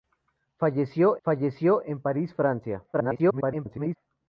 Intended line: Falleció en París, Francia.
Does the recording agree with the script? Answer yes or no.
no